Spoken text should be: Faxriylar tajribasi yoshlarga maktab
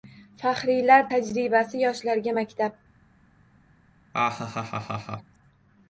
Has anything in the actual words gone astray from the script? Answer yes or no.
no